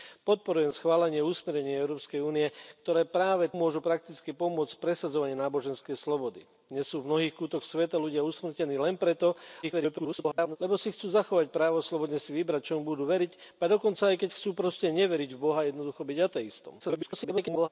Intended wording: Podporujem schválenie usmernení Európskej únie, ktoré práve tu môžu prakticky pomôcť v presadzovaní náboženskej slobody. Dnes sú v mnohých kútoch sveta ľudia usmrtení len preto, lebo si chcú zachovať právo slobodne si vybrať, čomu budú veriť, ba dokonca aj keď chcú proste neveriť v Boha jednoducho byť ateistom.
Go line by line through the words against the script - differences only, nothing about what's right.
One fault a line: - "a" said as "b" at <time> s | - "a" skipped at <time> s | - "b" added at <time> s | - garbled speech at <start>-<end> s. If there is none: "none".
- "tu" skipped at 3.5 s
- garbled speech at 9.6-10.6 s
- garbled speech at 16.8-17.7 s